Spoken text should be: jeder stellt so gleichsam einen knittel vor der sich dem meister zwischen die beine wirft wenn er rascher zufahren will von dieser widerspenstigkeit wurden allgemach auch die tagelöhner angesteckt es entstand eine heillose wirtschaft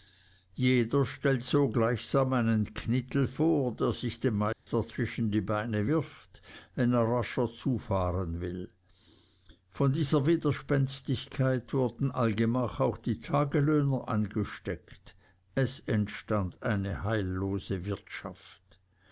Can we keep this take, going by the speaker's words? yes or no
yes